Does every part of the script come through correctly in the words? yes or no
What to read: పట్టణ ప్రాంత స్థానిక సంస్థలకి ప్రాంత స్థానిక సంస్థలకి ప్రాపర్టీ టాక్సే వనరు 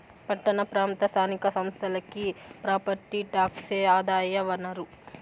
no